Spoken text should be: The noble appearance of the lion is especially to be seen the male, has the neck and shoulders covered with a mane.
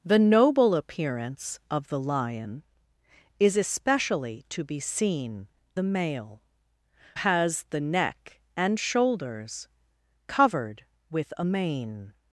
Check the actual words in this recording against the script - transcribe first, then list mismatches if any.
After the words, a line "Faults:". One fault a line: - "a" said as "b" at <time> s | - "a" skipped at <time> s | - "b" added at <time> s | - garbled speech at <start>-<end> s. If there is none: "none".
The noble appearance of the lion is especially to be seen the male, has the neck and shoulders covered with a mane.
Faults:
none